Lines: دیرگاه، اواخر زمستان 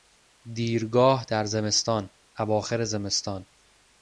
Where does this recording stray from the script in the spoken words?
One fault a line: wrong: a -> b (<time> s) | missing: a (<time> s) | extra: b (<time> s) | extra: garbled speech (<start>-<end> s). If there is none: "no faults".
extra: در زمستان (1.3 s)